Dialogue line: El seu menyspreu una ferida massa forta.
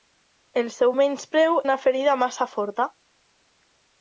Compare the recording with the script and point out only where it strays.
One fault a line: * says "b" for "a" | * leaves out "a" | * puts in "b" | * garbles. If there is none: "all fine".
all fine